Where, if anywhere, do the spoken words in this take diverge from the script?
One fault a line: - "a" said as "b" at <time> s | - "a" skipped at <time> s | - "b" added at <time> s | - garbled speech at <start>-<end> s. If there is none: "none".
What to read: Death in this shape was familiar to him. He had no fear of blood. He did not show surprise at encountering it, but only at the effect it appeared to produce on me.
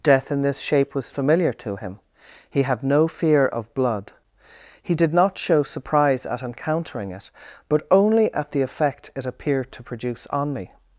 none